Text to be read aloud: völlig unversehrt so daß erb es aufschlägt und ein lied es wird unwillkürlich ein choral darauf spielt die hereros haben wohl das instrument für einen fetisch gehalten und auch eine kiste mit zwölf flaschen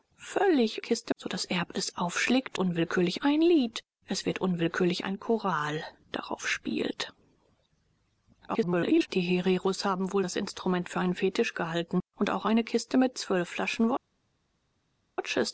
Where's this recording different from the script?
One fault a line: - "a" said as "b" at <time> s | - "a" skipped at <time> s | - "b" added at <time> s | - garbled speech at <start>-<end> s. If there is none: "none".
- "unversehrt" said as "kiste" at 0.8 s
- "und" said as "unwillkürlich" at 2.6 s
- garbled speech at 8.5-9.1 s